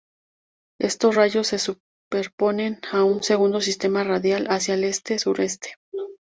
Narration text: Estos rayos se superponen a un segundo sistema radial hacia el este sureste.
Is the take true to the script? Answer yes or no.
yes